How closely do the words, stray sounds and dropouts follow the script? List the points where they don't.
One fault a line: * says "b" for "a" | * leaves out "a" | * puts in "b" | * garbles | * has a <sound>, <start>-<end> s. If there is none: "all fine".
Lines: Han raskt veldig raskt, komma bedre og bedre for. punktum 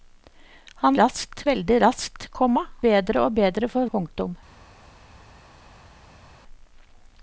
all fine